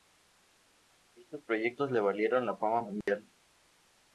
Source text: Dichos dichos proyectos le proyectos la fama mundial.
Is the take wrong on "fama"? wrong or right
right